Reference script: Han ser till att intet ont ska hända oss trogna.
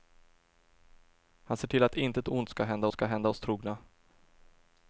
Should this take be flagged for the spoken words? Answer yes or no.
yes